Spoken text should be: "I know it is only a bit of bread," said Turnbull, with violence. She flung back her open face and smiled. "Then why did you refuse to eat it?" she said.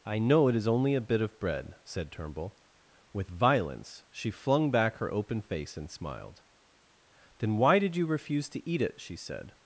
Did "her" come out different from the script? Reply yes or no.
no